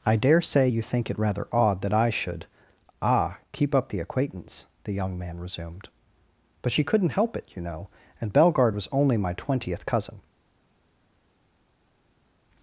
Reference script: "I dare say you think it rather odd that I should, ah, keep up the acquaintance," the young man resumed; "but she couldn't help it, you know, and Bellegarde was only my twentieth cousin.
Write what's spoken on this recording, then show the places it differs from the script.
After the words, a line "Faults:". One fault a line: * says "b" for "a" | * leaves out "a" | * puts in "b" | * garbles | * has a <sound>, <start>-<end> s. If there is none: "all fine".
"I dare say you think it rather odd that I should, ah, keep up the acquaintance," the young man resumed; "but she couldn't help it, you know, and Bellegarde was only my twentieth cousin.
Faults:
all fine